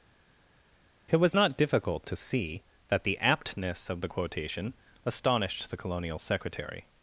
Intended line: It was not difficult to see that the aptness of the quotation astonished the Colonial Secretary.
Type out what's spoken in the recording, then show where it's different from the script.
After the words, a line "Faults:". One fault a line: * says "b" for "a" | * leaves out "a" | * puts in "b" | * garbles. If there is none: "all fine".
It was not difficult to see that the aptness of the quotation astonished the Colonial Secretary.
Faults:
all fine